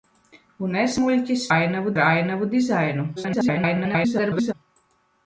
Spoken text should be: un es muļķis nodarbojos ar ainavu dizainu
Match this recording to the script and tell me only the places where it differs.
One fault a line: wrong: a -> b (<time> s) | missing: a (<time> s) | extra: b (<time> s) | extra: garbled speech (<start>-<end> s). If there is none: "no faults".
wrong: nodarbojos -> ainavu (1.5 s)
extra: garbled speech (3.2-4.5 s)